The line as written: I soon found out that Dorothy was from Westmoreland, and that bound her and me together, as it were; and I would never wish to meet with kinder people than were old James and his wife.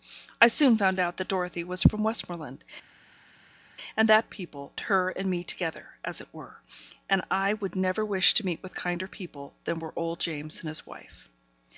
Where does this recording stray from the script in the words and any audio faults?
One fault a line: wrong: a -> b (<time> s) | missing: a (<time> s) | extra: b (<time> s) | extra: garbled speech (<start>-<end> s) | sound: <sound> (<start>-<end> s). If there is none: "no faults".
wrong: bound -> people (4.3 s)